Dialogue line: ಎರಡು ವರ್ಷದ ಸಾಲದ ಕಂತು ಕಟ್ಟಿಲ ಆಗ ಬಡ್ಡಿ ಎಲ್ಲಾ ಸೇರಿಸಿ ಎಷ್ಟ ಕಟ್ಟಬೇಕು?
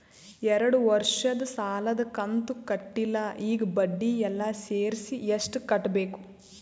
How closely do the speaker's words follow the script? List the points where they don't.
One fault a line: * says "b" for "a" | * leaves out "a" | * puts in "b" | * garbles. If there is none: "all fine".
* says "ಈಗ" for "ಆಗ"